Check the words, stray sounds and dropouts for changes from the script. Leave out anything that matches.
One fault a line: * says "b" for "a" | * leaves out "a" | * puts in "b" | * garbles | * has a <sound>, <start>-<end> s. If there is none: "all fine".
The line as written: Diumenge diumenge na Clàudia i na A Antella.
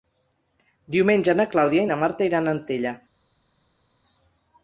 * leaves out "diumenge"
* puts in "Marta iran"